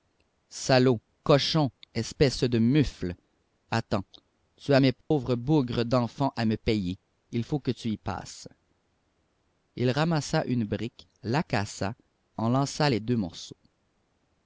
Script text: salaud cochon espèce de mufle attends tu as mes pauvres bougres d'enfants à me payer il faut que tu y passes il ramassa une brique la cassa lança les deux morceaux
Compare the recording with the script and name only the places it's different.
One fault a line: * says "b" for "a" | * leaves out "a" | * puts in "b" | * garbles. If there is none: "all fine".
* puts in "en"